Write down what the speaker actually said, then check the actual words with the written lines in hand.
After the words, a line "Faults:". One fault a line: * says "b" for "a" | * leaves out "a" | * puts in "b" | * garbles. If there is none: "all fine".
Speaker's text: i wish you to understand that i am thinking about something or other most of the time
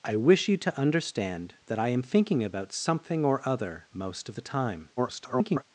i wish you to understand that i am thinking about something or other most of the time [garbled]
Faults:
* garbles